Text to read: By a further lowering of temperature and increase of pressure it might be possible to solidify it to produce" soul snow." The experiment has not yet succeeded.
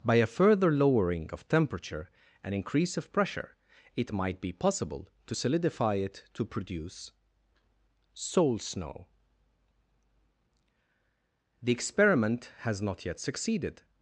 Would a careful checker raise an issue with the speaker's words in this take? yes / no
no